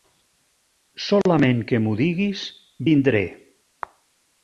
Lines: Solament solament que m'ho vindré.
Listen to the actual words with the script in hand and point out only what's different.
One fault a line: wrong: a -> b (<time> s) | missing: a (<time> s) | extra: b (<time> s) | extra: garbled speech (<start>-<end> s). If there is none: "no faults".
missing: solament (1.6 s)
extra: diguis (2.1 s)